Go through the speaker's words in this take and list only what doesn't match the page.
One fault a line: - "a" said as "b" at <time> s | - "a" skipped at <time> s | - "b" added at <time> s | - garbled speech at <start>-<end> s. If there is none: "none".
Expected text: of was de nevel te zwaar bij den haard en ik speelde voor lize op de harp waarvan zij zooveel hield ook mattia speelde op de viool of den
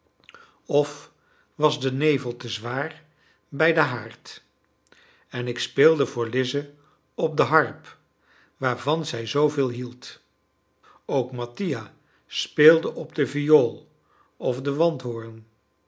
none